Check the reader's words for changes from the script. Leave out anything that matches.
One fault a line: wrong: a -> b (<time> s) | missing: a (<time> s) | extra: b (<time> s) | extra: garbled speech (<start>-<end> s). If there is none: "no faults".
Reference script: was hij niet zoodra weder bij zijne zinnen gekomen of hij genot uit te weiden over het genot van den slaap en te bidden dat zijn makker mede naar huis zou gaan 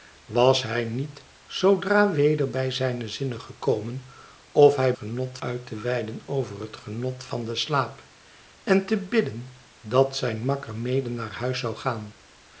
no faults